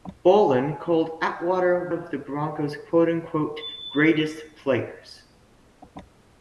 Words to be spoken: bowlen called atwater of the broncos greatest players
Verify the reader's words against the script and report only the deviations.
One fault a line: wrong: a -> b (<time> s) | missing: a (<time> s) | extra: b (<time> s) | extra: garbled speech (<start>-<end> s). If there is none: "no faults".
no faults